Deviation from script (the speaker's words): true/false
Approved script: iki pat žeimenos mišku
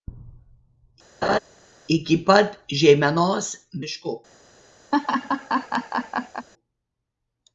false